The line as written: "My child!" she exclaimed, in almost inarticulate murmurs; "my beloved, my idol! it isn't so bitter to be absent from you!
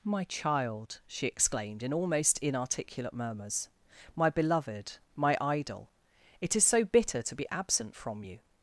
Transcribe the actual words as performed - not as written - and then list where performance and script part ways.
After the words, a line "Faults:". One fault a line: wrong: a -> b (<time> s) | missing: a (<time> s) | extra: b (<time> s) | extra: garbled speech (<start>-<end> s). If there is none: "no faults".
"My child!" she exclaimed, in almost inarticulate murmurs; "my beloved, my idol! it is so bitter to be absent from you!
Faults:
wrong: isn't -> is (6.5 s)